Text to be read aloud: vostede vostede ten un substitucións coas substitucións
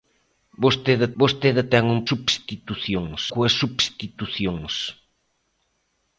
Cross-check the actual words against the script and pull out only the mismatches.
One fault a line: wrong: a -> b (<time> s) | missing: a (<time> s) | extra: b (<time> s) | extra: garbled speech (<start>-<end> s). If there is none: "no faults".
no faults